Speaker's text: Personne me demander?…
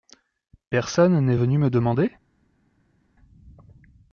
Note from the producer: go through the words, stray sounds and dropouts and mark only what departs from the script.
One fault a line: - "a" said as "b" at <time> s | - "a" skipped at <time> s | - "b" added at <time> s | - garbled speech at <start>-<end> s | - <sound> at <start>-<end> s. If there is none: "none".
- "n'est venu" added at 1.2 s